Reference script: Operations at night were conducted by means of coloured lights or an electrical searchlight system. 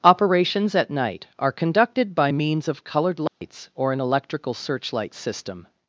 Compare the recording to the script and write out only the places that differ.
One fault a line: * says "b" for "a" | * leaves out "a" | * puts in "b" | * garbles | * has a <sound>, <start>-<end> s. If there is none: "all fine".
* says "are" for "were"
* has a dropout, 3.3-3.4 s